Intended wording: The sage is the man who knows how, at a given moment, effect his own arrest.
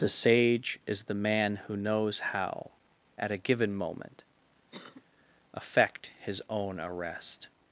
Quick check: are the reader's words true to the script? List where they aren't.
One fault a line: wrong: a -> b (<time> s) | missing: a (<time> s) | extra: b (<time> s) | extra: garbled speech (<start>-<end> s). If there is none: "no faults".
no faults